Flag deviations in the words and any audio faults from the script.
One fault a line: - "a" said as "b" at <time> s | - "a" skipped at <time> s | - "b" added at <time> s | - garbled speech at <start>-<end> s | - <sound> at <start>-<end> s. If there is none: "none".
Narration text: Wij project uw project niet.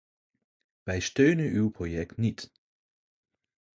- "project" said as "steunen" at 1.0 s